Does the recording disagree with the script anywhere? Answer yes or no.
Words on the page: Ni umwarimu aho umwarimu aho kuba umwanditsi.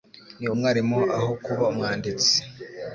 yes